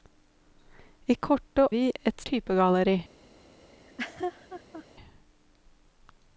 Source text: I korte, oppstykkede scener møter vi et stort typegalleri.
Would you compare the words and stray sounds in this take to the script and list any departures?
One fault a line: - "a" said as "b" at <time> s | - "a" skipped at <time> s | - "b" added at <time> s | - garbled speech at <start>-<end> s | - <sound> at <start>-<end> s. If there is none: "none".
- "oppstykkede scener møter" skipped at 1.6 s
- "stort" skipped at 2.2 s
- laugh at 3.7-4.9 s